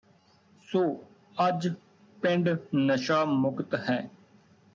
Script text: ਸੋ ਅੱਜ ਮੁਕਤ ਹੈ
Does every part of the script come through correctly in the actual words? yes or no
no